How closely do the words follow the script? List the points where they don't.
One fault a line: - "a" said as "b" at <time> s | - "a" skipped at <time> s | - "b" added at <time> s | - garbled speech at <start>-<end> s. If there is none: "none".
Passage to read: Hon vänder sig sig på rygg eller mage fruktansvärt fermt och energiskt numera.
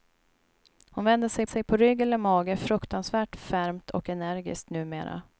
none